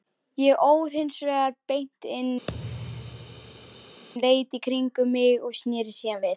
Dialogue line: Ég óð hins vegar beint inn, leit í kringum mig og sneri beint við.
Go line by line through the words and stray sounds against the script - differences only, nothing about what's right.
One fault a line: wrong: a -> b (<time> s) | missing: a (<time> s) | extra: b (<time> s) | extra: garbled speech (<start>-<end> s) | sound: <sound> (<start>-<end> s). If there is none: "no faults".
sound: thud (2.5-4.0 s)
wrong: beint -> síðan (6.0 s)